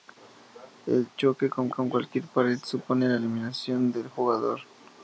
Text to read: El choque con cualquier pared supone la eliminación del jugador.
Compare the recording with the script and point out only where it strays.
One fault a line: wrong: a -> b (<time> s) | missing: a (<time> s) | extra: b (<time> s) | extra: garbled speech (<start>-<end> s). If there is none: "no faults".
extra: con (1.7 s)